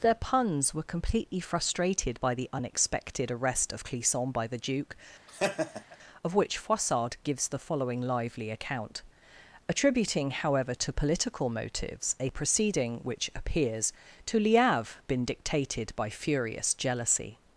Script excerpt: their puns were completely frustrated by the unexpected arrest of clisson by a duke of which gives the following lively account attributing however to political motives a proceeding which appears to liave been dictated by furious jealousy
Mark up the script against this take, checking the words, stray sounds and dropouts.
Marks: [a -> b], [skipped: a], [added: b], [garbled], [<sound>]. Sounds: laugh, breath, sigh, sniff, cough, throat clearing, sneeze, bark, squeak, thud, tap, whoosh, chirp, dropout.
their puns were completely frustrated by the unexpected arrest of clisson by [a -> the] duke [laugh] of which [added: froissart] gives the following lively account attributing however to political motives a proceeding which appears to liave been dictated by furious jealousy